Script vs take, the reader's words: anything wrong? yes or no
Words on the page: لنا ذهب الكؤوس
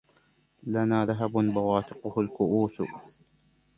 yes